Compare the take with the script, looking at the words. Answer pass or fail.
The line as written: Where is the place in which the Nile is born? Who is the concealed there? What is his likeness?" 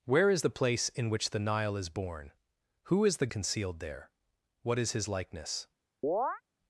pass